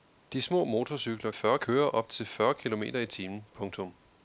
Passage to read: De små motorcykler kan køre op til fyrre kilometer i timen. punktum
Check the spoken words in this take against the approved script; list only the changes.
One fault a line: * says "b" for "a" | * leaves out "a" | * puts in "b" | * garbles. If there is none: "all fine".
* says "fyrre" for "kan"